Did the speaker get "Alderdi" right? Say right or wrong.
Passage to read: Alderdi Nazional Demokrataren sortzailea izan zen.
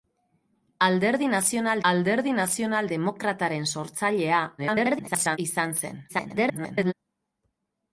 right